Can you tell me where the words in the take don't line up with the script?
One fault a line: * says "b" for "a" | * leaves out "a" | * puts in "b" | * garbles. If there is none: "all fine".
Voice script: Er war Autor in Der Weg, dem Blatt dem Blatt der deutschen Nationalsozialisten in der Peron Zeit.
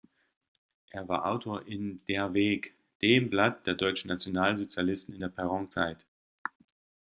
* leaves out "dem Blatt"